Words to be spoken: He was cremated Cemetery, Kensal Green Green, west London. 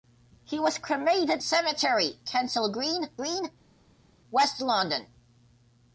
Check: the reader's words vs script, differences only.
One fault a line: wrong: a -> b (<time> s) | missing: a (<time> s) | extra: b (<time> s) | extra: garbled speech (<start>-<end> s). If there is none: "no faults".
no faults